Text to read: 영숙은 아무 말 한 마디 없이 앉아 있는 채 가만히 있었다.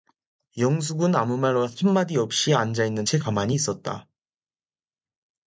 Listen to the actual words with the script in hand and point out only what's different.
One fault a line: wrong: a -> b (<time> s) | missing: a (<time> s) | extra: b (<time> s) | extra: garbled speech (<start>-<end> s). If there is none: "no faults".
no faults